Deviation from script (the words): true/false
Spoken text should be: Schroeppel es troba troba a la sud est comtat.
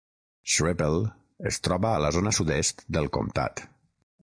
true